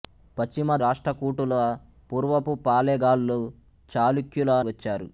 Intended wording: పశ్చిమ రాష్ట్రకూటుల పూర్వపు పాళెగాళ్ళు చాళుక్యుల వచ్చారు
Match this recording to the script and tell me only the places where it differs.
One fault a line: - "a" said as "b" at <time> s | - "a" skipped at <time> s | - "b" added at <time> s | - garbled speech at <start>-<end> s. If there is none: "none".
none